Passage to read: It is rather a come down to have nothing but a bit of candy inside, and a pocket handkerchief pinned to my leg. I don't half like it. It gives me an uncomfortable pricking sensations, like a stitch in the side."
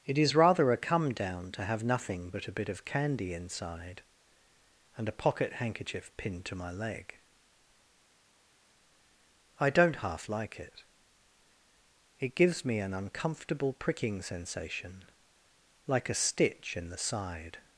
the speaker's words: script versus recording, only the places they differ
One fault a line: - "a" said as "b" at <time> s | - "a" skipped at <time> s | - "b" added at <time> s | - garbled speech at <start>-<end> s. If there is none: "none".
- "sensations" said as "sensation" at 14.2 s